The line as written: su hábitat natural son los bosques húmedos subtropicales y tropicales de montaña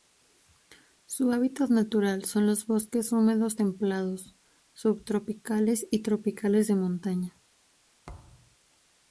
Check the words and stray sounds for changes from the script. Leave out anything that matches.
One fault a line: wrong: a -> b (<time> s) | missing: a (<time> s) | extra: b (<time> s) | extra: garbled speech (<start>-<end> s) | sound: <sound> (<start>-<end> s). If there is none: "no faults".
extra: templados (3.5 s)
sound: thud (8.1-8.6 s)